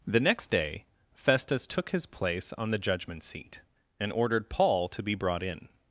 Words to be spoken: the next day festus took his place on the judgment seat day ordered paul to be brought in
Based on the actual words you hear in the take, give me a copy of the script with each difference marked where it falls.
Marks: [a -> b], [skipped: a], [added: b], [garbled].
the next day festus took his place on the judgment seat [day -> and] ordered paul to be brought in